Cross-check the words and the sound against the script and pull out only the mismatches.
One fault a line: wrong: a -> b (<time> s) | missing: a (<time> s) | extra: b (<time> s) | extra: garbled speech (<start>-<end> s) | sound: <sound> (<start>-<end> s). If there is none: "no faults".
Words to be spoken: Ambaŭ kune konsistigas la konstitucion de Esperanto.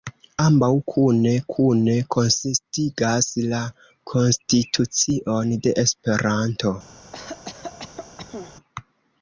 extra: kune (1.5 s)
sound: cough (7.1-8.6 s)